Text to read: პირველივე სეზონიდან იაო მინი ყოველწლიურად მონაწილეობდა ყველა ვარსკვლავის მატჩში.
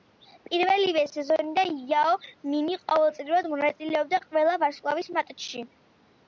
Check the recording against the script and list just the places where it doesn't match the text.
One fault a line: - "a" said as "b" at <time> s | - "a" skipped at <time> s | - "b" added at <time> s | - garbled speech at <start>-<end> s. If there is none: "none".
none